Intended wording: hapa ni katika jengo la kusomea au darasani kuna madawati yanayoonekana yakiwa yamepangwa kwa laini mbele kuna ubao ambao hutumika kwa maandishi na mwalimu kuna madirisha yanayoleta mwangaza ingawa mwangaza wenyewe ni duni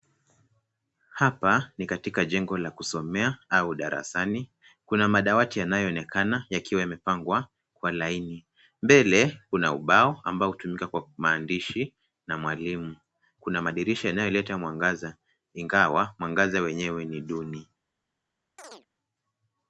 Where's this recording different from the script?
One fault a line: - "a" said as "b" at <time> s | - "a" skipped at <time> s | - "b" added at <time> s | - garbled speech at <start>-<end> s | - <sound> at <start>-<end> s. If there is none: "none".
- chirp at 18.6-18.9 s